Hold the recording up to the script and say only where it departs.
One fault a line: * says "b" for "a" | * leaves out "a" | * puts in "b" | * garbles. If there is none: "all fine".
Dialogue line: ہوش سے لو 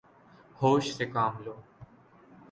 * puts in "کام"